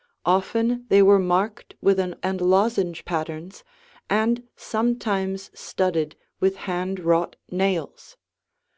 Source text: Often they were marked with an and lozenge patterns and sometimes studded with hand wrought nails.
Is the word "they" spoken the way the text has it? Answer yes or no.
yes